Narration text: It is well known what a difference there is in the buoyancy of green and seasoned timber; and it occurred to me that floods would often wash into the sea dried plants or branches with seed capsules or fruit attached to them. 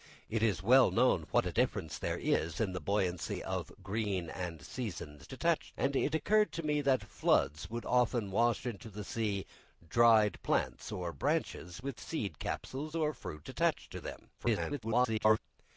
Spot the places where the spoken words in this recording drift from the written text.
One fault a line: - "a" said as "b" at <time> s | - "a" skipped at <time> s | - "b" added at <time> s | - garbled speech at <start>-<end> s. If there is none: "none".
- "timber" said as "attached" at 5.3 s
- garbled speech at 14.4-15.4 s